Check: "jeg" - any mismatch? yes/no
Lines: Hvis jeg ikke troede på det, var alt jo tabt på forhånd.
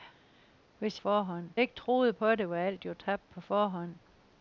yes